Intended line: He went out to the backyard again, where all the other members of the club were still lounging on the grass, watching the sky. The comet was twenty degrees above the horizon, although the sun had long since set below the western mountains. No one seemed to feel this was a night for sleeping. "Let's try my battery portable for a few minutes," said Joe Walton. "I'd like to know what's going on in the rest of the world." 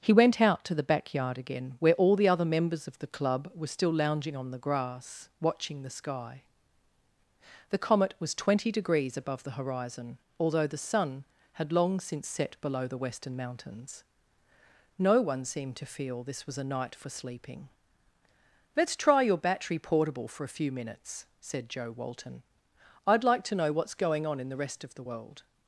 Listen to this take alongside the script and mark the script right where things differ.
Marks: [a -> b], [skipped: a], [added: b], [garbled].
He went out to the backyard again, where all the other members of the club were still lounging on the grass, watching the sky. The comet was twenty degrees above the horizon, although the sun had long since set below the western mountains. No one seemed to feel this was a night for sleeping. "Let's try [my -> your] battery portable for a few minutes," said Joe Walton. "I'd like to know what's going on in the rest of the world."